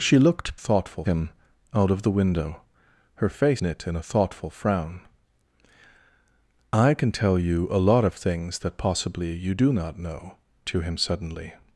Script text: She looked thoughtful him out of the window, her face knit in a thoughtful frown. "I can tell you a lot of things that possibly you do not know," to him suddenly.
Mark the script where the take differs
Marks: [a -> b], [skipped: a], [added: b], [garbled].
She looked thoughtful him out of the window, her face knit in a thoughtful frown. "I can tell you a lot of things that possibly you do not know," to him suddenly.